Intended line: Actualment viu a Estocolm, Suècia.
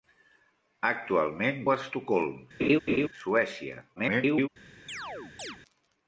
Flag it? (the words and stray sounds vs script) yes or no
yes